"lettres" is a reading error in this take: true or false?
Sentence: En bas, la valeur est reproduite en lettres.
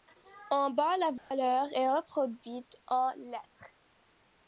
false